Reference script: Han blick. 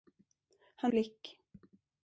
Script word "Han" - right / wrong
right